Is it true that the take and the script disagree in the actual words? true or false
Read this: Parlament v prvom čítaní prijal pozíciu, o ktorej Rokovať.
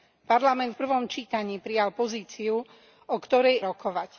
false